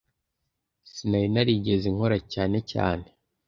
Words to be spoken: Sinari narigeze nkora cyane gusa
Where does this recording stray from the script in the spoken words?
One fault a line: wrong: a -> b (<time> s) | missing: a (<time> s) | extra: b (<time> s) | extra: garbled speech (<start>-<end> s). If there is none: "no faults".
wrong: gusa -> cyane (2.7 s)